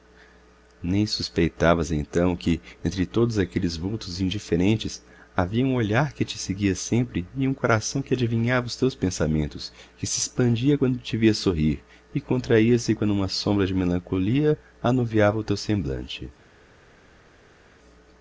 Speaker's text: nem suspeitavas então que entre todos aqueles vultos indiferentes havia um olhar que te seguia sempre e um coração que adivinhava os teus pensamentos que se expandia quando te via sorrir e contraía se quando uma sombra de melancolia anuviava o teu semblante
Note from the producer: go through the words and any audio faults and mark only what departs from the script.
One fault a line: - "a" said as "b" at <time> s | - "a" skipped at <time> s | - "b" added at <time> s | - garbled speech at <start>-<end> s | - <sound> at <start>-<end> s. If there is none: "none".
none